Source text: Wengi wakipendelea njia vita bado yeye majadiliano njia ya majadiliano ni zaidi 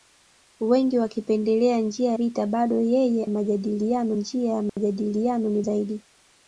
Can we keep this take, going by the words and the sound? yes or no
no